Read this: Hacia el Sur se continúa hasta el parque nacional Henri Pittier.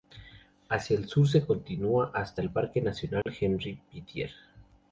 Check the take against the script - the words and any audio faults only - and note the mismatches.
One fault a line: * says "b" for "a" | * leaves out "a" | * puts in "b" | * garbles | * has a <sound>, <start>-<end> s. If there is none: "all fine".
* has a dropout, 3.2-3.3 s